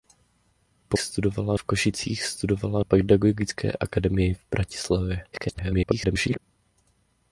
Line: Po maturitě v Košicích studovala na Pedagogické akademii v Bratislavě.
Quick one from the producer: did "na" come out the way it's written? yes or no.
no